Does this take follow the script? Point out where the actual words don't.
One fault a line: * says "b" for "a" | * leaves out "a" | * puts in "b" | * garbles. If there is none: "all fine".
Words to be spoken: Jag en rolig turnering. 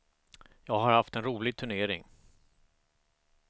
* puts in "har haft"